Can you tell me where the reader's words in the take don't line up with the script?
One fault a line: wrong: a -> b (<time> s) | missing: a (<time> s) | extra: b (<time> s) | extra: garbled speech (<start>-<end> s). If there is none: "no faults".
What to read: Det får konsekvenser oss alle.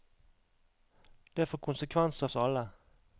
no faults